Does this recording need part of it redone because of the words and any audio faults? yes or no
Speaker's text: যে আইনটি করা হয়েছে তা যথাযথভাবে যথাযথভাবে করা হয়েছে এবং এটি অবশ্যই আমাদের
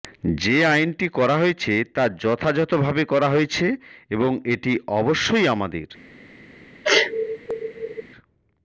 yes